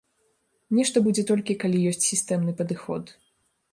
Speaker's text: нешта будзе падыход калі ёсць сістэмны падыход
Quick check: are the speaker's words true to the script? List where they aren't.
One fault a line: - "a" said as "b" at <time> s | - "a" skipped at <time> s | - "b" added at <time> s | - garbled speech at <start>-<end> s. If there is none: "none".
- "падыход" said as "толькі" at 1.3 s